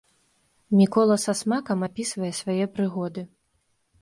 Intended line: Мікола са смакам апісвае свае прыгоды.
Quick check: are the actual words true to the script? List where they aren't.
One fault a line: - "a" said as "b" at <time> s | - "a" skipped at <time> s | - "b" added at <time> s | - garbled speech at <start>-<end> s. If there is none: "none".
none